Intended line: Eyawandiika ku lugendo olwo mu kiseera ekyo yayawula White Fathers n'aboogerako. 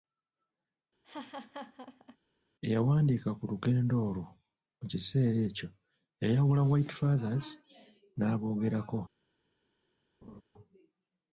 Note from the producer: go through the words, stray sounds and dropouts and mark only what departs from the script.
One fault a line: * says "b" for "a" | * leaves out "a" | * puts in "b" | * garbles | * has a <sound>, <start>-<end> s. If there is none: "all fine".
* has a laugh, 1.0-2.2 s
* has a laugh, 10.2-10.4 s